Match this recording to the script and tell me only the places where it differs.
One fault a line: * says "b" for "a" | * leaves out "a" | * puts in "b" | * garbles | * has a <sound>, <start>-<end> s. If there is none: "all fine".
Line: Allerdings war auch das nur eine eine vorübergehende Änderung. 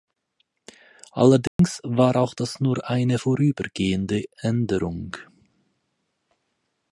* has a dropout, 1.5-1.6 s
* leaves out "eine"